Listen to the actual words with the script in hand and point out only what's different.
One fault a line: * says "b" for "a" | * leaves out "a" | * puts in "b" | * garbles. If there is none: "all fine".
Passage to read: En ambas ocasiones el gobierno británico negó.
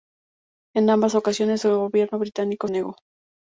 all fine